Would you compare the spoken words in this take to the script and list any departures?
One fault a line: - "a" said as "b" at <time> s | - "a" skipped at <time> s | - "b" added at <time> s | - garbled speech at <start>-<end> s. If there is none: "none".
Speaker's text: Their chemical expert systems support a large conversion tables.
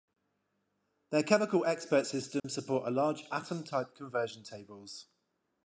- "atom type" added at 3.3 s